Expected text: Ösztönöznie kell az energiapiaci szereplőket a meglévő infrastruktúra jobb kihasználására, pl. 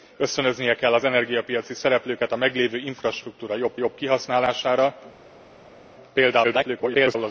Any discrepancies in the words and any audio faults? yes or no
yes